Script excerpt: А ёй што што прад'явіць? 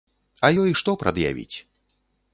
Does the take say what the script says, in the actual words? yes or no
no